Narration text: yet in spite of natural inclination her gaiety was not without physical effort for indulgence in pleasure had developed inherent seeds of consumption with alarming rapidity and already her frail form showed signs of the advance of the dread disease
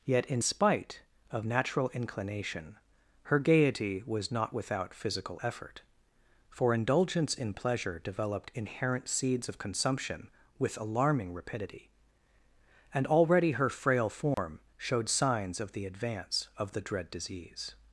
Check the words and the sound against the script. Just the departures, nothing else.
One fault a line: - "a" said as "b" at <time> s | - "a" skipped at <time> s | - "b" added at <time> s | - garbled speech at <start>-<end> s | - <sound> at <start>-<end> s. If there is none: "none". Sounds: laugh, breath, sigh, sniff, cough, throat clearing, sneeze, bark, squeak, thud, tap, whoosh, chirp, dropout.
- "had" skipped at 8.0 s
- dropout at 14.3-14.4 s